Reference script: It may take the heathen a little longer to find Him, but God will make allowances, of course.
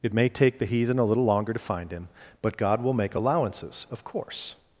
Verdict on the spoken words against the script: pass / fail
pass